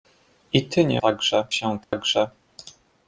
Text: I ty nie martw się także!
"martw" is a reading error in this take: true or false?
true